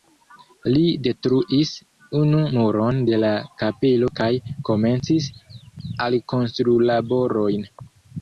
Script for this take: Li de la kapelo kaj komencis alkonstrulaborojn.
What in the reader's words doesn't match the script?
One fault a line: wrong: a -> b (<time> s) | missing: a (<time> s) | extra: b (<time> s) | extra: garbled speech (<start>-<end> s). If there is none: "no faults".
extra: detruis unu muron (1.1 s)